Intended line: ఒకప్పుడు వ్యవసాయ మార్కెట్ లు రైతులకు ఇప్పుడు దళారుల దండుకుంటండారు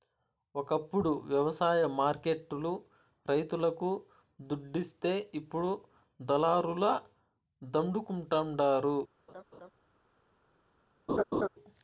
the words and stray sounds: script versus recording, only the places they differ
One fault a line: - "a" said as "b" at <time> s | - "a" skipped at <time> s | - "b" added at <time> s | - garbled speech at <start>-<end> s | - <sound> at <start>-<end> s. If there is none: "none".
- "దుడ్డిస్తే" added at 4.4 s
- laugh at 9.3-9.7 s
- laugh at 11.1-11.5 s